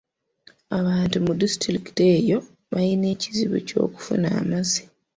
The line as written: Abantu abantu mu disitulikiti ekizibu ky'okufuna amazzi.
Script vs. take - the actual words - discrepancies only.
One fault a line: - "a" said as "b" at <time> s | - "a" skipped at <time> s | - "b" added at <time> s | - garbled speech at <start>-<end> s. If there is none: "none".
- "abantu" skipped at 1.1 s
- "eyo balina" added at 2.2 s